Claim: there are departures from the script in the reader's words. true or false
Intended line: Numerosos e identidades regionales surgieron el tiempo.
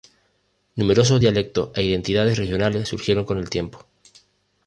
true